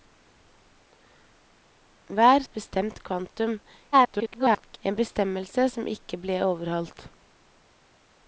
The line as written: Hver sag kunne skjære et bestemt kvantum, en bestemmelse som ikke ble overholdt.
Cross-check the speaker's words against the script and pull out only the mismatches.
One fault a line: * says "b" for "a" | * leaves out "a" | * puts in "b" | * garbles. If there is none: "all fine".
* leaves out "sag kunne skjære"
* garbles